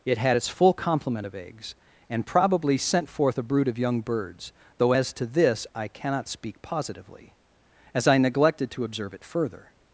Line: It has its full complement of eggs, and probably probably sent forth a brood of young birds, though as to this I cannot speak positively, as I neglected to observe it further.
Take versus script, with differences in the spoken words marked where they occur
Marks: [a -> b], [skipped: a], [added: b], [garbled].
It [has -> had] its full complement of eggs, and probably [skipped: probably] sent forth a brood of young birds, though as to this I cannot speak positively, as I neglected to observe it further.